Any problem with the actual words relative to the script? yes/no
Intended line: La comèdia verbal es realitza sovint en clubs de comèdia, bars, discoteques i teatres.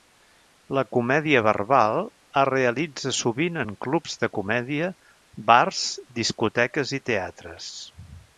no